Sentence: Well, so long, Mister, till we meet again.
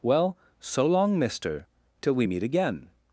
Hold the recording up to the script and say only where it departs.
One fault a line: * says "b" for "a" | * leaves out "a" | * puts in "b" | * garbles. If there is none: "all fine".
all fine